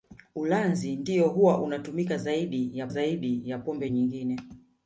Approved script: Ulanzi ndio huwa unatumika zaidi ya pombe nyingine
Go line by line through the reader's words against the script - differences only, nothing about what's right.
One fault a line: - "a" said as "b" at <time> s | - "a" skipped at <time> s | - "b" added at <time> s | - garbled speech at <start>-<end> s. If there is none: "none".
- "zaidi ya" added at 2.9 s